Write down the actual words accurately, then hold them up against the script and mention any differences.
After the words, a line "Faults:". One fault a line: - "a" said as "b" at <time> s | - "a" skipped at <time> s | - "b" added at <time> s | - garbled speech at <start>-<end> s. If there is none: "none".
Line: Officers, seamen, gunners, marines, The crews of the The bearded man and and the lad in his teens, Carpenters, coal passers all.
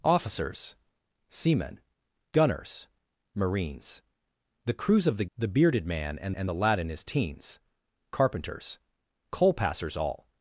Officers, seamen, gunners, marines, The crews of the The bearded man and and the lad in his teens, Carpenters, coal passers all.
Faults:
none